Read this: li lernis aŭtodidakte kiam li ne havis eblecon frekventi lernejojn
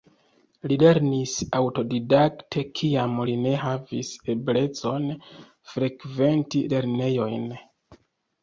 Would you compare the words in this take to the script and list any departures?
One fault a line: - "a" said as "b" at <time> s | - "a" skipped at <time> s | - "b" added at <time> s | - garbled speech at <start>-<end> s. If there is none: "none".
none